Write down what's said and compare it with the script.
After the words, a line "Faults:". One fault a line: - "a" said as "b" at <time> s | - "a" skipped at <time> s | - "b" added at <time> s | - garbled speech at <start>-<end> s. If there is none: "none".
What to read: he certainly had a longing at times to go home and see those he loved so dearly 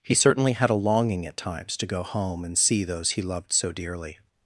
he certainly had a longing at times to go home and see those he loved so dearly
Faults:
none